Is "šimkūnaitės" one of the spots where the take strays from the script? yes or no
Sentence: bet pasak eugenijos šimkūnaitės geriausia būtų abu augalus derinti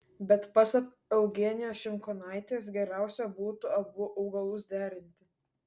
no